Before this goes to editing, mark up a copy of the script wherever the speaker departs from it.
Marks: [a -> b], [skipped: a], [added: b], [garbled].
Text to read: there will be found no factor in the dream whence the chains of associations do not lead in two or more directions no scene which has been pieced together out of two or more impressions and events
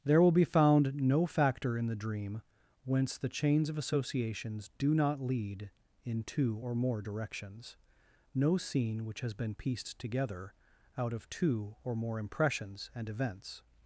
there will be found no factor in the dream whence the chains of associations do not lead in two or more directions no scene which has been pieced together out of two or more impressions and events